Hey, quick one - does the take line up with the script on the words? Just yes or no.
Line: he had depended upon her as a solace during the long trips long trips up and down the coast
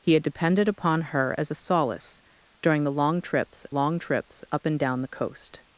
yes